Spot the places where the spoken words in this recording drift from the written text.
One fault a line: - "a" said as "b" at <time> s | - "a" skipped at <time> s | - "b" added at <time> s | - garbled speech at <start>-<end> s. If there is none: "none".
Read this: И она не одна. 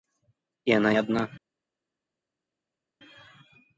- "не" skipped at 0.9 s